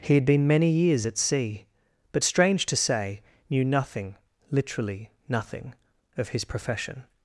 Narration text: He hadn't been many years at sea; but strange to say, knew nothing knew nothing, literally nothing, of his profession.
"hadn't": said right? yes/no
no